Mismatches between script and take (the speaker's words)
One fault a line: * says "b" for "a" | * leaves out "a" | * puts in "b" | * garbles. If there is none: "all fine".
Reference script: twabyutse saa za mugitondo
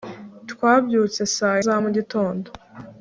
all fine